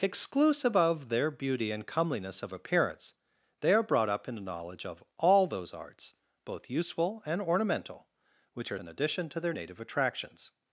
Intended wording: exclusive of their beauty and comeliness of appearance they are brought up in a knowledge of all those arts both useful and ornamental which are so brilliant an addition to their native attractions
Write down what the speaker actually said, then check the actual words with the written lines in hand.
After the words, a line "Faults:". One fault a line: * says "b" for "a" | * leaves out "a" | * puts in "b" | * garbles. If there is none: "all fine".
exclusive of their beauty and comeliness of appearance they are brought up in a knowledge of all those arts both useful and ornamental which are an addition to their native attractions
Faults:
* leaves out "so brilliant"